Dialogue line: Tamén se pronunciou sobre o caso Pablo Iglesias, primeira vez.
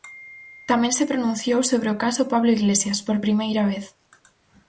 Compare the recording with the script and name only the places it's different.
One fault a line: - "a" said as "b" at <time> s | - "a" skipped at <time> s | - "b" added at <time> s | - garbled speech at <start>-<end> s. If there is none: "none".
- "por" added at 3.1 s